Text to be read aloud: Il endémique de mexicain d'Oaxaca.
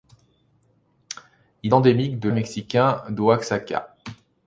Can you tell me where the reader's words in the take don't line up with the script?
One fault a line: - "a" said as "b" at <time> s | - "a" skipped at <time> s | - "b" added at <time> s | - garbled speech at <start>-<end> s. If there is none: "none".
none